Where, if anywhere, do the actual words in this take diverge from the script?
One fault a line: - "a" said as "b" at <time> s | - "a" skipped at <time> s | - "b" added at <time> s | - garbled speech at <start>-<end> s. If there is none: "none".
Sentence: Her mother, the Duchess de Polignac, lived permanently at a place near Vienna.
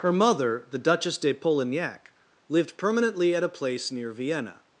none